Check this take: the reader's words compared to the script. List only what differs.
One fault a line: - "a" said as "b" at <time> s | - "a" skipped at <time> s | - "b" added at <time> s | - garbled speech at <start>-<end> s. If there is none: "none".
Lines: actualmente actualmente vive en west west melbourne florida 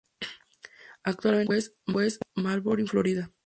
- "actualmente" skipped at 1.5 s
- "west" skipped at 2.2 s